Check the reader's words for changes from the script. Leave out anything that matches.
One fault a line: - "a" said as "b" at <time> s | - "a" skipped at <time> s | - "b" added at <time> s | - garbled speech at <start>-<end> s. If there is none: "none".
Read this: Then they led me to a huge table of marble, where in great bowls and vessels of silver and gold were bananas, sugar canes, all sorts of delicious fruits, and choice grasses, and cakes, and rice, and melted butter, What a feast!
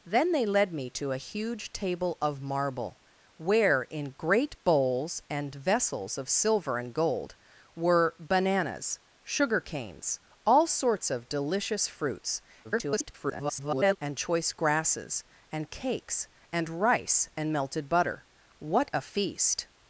- garbled speech at 12.6-14.0 s